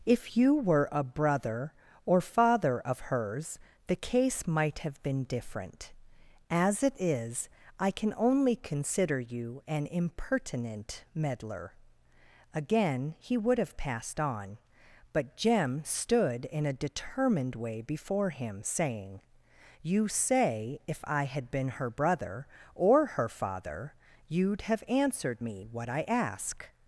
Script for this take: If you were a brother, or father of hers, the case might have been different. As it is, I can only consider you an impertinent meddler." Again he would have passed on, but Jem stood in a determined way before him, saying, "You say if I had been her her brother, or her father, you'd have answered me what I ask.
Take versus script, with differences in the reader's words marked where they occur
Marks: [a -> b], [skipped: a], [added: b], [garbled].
If you were a brother, or father of hers, the case might have been different. As it is, I can only consider you an impertinent meddler." Again he would have passed on, but Jem stood in a determined way before him, saying, "You say if I had been her [skipped: her] brother, or her father, you'd have answered me what I ask.